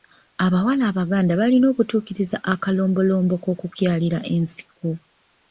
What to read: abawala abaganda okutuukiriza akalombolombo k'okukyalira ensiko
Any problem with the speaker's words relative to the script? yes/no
yes